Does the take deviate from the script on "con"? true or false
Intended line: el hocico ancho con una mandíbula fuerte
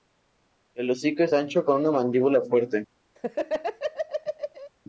false